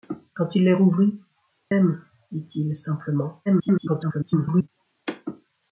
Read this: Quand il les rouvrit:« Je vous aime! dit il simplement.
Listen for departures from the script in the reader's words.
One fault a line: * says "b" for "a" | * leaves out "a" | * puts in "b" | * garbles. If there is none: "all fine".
* leaves out "Je vous"
* garbles